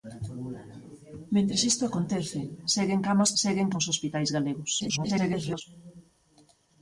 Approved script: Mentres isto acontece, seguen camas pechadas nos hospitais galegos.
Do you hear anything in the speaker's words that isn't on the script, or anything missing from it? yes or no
yes